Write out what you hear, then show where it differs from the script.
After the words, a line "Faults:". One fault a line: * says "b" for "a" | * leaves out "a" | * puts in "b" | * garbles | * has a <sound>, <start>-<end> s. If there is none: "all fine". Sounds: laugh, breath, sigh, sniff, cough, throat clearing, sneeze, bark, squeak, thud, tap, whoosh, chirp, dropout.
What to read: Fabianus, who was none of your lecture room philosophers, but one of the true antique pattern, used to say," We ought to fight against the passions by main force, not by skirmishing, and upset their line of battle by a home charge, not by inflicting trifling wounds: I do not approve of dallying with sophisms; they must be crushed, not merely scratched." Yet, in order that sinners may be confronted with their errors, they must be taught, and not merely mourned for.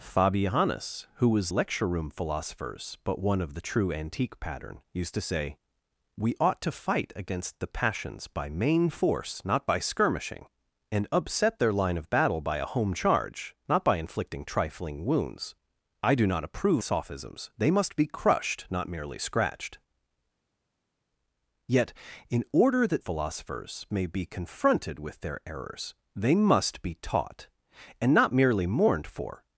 Fabianus, who was lecture room philosophers, but one of the true antique pattern, used to say," We ought to fight against the passions by main force, not by skirmishing, and upset their line of battle by a home charge, not by inflicting trifling wounds: I do not approve sophisms; they must be crushed, not merely scratched." Yet, in order that philosophers may be confronted with their errors, they must be taught, and not merely mourned for.
Faults:
* leaves out "none of your"
* leaves out "of dallying with"
* says "philosophers" for "sinners"